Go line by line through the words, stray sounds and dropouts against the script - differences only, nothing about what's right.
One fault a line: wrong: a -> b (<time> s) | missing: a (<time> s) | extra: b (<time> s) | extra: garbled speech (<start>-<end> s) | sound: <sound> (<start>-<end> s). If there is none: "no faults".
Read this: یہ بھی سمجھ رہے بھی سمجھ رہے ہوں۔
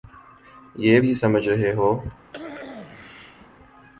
missing: بھی سمجھ رہے (1.7 s)
sound: cough (2.3-3.5 s)